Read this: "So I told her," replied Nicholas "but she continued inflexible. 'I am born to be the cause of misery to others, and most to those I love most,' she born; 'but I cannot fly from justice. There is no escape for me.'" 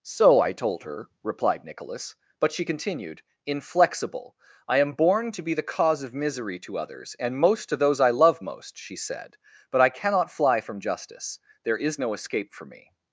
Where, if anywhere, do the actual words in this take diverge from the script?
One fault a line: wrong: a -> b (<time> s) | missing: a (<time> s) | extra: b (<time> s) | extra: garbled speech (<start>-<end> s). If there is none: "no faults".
wrong: born -> said (8.9 s)